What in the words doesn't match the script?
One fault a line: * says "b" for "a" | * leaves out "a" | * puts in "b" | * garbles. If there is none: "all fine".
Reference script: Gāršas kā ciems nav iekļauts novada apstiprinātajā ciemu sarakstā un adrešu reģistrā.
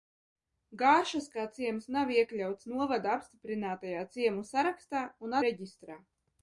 * leaves out "adrešu"